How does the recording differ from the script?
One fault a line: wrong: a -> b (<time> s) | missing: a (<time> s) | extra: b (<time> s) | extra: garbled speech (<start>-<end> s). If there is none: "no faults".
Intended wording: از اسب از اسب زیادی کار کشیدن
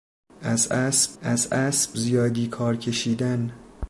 no faults